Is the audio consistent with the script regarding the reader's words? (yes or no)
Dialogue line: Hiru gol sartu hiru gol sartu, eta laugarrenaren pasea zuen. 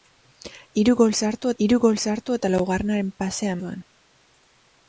yes